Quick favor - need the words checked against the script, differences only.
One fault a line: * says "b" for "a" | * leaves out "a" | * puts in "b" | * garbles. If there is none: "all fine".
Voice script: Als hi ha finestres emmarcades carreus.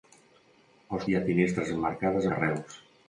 all fine